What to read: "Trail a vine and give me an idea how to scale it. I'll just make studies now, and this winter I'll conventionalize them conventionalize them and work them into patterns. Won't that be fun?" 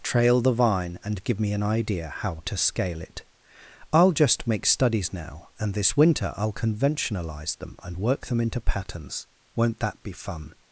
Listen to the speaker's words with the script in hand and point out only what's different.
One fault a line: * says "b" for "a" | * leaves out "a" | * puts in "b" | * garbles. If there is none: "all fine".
* says "the" for "a"
* leaves out "conventionalize them"